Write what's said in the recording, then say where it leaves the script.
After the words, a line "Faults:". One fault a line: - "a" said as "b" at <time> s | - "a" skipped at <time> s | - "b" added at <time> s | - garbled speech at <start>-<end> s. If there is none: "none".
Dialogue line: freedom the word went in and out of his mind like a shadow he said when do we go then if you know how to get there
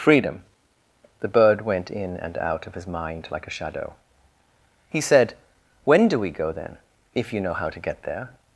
freedom the bird went in and out of his mind like a shadow he said when do we go then if you know how to get there
Faults:
- "word" said as "bird" at 1.3 s